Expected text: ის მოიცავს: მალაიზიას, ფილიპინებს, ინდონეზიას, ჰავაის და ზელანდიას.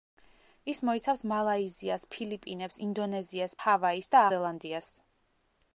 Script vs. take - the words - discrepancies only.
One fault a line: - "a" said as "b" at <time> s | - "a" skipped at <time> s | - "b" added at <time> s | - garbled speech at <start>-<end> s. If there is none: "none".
none